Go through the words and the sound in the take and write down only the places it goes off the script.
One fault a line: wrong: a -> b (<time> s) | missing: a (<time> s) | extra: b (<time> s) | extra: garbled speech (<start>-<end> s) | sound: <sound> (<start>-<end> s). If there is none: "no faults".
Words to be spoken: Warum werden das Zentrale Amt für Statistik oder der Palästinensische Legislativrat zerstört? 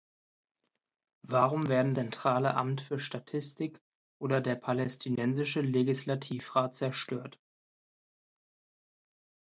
missing: das (1.9 s)